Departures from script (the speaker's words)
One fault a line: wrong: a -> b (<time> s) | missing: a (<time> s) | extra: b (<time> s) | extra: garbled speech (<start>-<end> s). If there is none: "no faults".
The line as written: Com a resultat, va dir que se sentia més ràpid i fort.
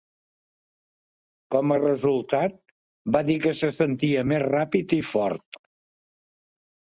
no faults